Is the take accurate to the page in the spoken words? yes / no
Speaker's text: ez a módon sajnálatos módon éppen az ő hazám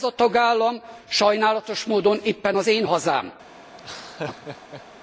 no